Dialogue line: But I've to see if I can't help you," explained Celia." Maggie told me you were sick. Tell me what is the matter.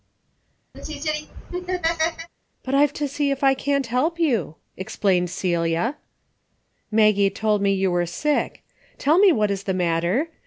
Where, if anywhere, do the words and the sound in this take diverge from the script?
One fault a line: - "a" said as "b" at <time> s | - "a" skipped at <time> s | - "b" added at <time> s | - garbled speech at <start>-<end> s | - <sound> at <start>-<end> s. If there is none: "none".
- laugh at 0.7-2.3 s